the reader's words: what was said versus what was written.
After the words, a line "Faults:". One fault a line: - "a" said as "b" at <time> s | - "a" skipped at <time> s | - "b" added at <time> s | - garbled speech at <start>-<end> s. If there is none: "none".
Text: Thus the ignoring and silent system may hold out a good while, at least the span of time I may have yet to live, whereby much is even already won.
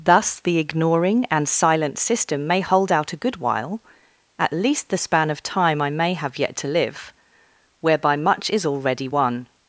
Thus the ignoring and silent system may hold out a good while, at least the span of time I may have yet to live, whereby much is already won.
Faults:
- "even" skipped at 8.6 s